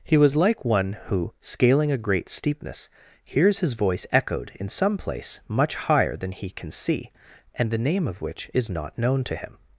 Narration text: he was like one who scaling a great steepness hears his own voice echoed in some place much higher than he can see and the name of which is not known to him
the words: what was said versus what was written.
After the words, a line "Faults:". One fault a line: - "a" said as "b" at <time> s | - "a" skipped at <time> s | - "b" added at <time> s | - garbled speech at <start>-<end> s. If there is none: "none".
he was like one who scaling a great steepness hears his voice echoed in some place much higher than he can see and the name of which is not known to him
Faults:
- "own" skipped at 3.7 s